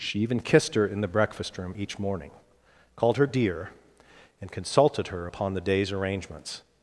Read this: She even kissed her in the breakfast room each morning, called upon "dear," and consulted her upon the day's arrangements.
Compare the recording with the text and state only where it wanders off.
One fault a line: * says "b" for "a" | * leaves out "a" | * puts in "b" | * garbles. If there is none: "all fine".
* says "her" for "upon"